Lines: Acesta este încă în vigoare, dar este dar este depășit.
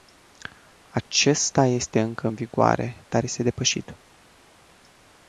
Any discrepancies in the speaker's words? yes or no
yes